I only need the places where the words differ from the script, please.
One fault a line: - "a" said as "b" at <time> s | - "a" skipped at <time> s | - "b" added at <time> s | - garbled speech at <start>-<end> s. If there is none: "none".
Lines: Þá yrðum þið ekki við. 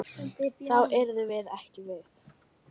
- "þið" said as "við" at 1.3 s